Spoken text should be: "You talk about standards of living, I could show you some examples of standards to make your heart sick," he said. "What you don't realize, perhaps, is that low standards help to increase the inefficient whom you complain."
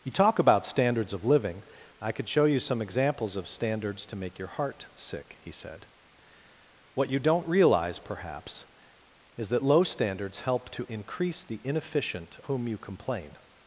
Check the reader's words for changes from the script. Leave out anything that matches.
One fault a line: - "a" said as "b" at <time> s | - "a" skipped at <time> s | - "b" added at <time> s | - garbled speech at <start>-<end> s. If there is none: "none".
none